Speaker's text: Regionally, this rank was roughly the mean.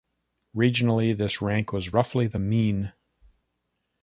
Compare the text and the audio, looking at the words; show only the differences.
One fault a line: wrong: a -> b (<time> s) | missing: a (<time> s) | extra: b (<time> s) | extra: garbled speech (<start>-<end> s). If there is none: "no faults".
no faults